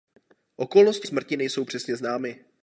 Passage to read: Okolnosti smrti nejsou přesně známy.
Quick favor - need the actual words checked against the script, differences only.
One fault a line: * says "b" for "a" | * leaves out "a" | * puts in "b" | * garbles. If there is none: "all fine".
all fine